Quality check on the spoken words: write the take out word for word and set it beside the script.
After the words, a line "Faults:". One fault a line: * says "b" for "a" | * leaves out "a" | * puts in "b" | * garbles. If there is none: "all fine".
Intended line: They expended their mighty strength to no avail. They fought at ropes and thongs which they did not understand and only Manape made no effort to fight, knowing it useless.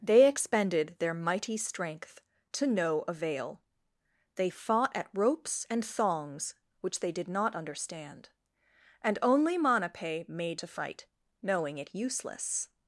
They expended their mighty strength to no avail. They fought at ropes and thongs which they did not understand and only Manape made to fight, knowing it useless.
Faults:
* leaves out "no effort"